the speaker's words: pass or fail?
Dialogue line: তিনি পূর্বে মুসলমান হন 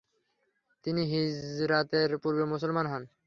fail